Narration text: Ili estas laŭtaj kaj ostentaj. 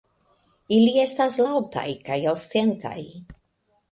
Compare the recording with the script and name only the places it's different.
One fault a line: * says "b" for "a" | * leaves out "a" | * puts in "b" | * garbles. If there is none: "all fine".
all fine